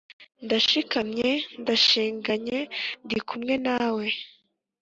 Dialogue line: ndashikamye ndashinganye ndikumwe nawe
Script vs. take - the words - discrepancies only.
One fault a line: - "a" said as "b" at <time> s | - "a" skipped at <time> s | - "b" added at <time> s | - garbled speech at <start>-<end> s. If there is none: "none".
none